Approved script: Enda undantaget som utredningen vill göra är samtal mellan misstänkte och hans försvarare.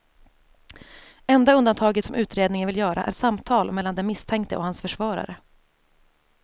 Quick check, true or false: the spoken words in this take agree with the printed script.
false